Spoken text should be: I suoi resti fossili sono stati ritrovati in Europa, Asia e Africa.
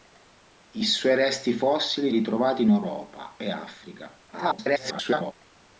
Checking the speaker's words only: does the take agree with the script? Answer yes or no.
no